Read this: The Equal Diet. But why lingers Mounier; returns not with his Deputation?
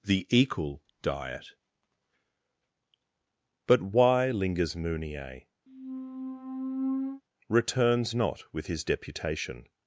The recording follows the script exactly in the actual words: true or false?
true